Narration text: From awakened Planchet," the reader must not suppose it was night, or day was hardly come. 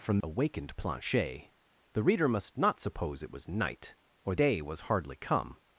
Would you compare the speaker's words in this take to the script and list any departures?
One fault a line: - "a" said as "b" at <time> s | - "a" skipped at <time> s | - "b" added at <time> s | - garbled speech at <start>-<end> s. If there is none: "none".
none